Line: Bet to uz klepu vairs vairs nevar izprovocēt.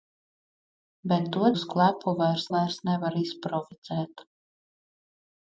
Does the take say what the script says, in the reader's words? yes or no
yes